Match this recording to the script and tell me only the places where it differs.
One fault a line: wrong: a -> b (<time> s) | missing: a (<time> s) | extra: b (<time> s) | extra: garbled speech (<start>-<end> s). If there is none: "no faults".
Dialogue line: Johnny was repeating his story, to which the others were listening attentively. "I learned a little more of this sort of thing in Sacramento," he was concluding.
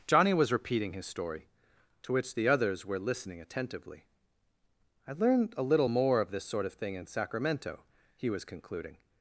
no faults